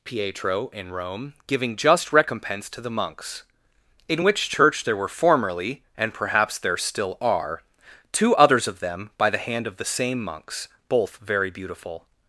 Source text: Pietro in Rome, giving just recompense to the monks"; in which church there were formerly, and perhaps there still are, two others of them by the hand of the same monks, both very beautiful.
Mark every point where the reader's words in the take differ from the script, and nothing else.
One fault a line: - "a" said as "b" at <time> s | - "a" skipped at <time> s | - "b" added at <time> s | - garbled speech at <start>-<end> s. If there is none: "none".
none